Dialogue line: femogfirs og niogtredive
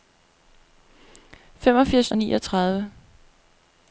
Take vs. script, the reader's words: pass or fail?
pass